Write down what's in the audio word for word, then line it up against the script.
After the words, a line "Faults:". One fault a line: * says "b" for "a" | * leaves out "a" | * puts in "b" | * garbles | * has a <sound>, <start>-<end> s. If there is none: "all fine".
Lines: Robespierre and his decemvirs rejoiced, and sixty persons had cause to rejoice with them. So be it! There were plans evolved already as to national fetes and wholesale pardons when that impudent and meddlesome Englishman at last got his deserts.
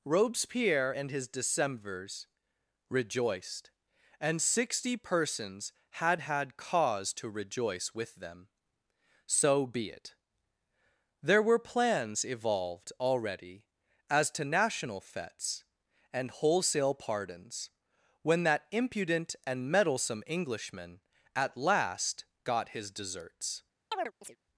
Robespierre and his decemvirs rejoiced, and sixty persons had had cause to rejoice with them. So be it! There were plans evolved already as to national fetes and wholesale pardons when that impudent and meddlesome Englishman at last got his deserts.
Faults:
* puts in "had"
* has a chirp, 23.9-24.4 s